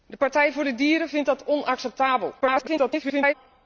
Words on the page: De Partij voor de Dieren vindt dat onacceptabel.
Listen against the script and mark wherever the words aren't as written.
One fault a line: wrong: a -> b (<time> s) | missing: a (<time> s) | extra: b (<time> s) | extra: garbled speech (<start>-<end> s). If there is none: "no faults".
extra: garbled speech (2.4-3.3 s)